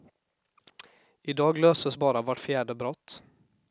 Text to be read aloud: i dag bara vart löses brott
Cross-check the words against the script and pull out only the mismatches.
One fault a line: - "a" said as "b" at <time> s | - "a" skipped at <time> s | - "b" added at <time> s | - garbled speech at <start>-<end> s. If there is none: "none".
- "löses" added at 1.6 s
- "löses" said as "fjärde" at 2.4 s